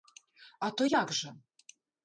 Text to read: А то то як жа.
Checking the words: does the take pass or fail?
fail